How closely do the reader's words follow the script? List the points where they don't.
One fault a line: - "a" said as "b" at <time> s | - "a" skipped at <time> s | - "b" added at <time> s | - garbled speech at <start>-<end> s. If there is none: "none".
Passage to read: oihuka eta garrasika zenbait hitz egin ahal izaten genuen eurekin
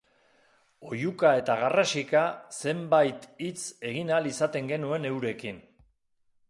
none